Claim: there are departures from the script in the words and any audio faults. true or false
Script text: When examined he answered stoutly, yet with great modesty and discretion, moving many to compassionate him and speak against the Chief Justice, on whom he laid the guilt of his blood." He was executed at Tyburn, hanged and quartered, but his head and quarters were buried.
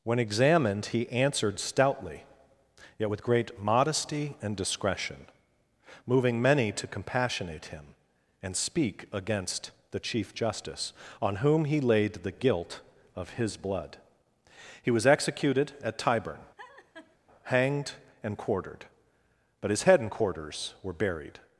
true